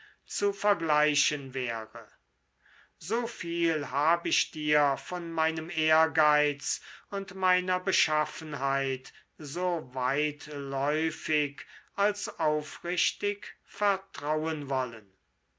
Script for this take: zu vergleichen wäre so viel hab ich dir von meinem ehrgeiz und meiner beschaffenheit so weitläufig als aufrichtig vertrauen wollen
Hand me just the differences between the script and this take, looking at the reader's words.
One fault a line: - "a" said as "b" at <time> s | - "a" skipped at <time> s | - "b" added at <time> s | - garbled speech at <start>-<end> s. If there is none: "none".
none